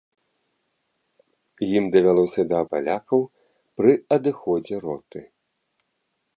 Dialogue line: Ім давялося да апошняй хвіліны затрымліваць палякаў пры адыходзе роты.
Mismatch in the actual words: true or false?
true